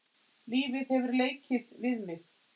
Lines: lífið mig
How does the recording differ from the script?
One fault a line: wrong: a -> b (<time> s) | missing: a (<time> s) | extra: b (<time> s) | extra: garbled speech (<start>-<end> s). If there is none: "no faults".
extra: hefur leikið við (0.9 s)